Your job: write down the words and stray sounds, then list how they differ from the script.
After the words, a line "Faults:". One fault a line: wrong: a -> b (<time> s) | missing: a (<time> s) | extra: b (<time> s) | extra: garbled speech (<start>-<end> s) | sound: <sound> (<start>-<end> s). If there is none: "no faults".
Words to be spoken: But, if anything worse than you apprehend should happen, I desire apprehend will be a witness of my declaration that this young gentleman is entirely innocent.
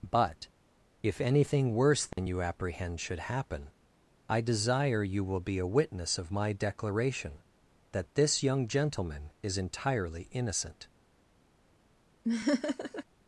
But, if anything worse than you apprehend should happen, I desire you will be a witness of my declaration that this young gentleman is entirely innocent.
Faults:
sound: dropout (2.1-2.2 s)
wrong: apprehend -> you (5.0 s)
sound: laugh (12.2-13.0 s)